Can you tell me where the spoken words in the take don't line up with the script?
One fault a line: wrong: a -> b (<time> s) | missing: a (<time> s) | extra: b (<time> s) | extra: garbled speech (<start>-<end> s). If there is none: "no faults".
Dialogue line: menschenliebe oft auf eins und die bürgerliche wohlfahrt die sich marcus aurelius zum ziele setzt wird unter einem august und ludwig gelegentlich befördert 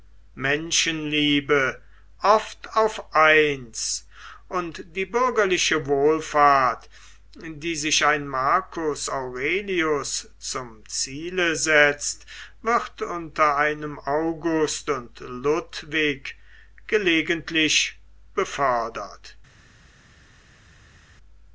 extra: ein (8.1 s)